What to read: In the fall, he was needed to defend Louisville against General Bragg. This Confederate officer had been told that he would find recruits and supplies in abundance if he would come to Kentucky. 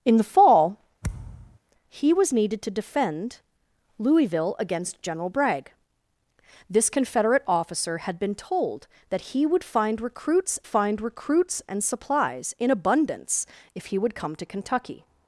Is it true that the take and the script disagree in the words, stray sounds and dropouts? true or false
true